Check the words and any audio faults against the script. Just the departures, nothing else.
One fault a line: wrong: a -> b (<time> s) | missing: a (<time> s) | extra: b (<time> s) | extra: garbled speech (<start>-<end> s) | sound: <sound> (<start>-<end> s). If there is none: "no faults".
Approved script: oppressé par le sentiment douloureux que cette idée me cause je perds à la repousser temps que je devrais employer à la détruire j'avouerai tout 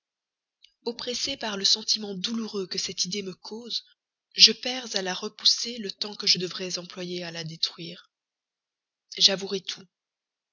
extra: le (5.8 s)